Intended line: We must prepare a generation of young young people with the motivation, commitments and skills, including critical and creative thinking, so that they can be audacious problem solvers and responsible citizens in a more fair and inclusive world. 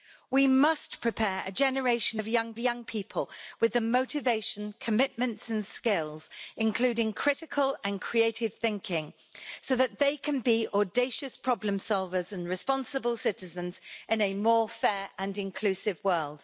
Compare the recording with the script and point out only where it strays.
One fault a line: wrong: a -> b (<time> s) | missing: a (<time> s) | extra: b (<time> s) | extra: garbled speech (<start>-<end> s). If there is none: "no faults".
no faults